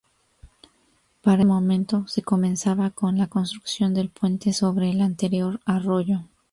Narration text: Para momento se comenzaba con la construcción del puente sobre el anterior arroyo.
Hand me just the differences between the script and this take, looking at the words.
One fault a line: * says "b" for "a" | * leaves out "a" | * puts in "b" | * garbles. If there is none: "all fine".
all fine